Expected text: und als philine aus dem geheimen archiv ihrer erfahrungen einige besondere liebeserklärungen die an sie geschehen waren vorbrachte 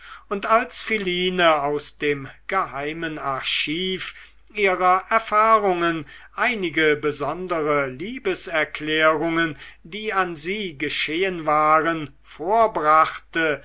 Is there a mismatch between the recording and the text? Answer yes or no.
no